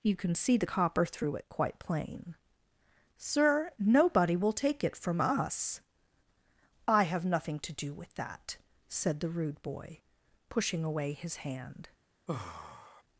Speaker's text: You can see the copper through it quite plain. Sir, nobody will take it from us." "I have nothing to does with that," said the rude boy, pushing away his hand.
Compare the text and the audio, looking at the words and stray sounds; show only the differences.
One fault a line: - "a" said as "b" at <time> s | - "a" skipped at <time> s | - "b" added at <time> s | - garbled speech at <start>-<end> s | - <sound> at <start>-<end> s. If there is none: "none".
- "does" said as "do" at 7.7 s
- sigh at 12.3-13.0 s